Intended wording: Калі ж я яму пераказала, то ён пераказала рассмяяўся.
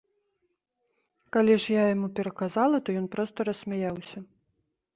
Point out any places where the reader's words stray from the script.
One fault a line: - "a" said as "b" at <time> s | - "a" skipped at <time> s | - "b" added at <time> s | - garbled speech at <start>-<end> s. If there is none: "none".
- "пераказала" said as "проста" at 3.2 s